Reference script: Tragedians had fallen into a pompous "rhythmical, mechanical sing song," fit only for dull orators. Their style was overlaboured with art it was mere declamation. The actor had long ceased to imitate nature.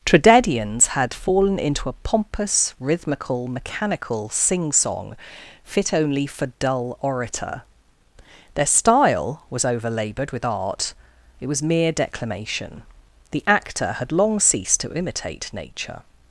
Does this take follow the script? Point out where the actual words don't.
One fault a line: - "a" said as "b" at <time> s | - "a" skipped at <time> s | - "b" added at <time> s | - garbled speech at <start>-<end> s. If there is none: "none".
- "orators" said as "orator" at 7.0 s